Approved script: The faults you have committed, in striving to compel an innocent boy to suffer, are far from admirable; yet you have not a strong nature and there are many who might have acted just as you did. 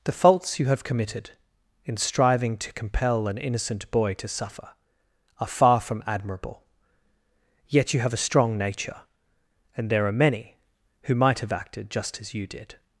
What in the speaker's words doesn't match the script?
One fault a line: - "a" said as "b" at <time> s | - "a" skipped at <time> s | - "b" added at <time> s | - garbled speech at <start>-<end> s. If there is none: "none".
- "not" skipped at 8.1 s